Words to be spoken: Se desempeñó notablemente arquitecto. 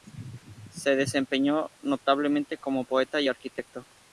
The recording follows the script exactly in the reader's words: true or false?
false